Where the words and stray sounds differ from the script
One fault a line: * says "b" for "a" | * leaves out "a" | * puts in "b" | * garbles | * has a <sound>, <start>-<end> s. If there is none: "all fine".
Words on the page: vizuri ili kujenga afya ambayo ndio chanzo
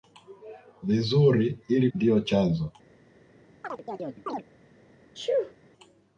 * leaves out "kujenga afya ambayo"
* has a chirp, 3.6-4.4 s
* has a sneeze, 5.1-5.5 s